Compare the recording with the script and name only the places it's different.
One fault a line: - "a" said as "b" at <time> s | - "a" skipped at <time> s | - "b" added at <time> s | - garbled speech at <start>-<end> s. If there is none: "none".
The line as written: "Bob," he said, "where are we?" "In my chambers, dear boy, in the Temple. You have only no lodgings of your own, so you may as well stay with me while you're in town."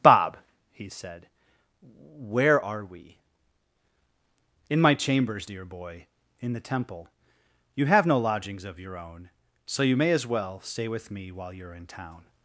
- "only" skipped at 8.1 s